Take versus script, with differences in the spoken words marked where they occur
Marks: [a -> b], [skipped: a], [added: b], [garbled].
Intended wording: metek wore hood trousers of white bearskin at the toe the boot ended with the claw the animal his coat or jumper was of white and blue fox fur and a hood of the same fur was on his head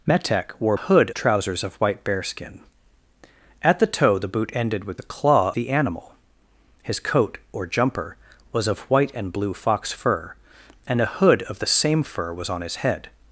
metek wore hood trousers of white bearskin at the toe the boot ended with the claw the animal his coat or jumper was of white and blue fox fur and a hood of the same fur was on his head